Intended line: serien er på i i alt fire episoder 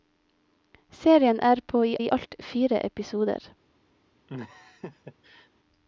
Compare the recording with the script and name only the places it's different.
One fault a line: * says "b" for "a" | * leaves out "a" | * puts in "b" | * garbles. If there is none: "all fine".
all fine